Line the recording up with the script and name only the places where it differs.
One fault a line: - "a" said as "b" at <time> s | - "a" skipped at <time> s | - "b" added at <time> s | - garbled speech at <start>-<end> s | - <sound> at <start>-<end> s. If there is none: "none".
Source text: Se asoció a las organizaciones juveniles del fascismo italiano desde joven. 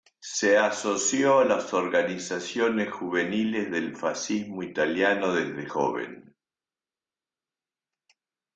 none